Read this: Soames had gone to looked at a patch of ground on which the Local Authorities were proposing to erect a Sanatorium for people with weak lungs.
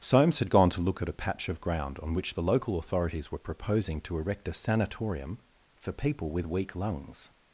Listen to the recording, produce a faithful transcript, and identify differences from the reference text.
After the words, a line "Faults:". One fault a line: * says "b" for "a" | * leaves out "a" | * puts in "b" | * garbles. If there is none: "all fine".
Soames had gone to look at a patch of ground on which the Local Authorities were proposing to erect a Sanatorium for people with weak lungs.
Faults:
* says "look" for "looked"